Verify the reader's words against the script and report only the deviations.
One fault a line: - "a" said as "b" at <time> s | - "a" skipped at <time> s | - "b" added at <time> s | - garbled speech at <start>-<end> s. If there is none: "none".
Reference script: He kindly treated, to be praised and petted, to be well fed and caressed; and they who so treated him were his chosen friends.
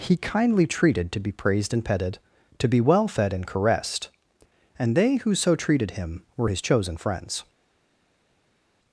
none